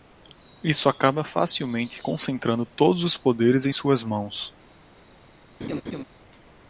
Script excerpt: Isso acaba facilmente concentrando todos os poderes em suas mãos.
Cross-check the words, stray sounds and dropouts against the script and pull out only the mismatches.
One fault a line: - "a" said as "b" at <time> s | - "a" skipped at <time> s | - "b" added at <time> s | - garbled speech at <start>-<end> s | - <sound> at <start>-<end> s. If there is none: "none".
- laugh at 5.6-6.0 s